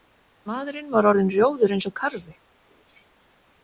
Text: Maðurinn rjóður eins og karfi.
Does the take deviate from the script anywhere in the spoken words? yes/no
yes